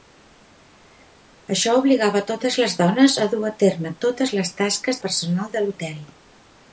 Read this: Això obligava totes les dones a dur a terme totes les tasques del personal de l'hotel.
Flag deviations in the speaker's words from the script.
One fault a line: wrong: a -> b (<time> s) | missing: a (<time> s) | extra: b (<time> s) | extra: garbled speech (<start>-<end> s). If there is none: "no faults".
missing: del (5.0 s)